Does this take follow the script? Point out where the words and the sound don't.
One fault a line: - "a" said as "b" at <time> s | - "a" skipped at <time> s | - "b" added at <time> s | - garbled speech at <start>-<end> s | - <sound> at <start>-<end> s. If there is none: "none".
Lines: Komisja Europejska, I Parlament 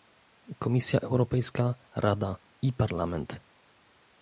- "Rada" added at 2.0 s